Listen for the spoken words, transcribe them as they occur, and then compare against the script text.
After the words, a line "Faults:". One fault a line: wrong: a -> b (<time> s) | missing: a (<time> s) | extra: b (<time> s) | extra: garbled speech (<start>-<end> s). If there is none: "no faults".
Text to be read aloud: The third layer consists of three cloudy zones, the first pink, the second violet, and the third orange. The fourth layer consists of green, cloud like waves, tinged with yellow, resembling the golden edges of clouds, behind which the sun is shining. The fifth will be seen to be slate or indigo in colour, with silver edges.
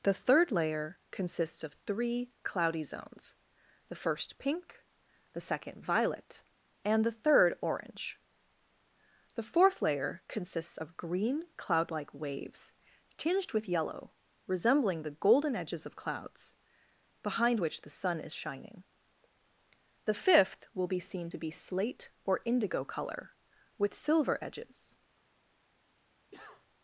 The third layer consists of three cloudy zones, the first pink, the second violet, and the third orange. The fourth layer consists of green, cloud like waves, tinged with yellow, resembling the golden edges of clouds, behind which the sun is shining. The fifth will be seen to be slate or indigo colour, with silver edges.
Faults:
missing: in (22.8 s)